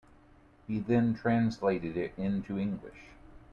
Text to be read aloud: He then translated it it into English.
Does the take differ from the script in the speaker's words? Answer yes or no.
yes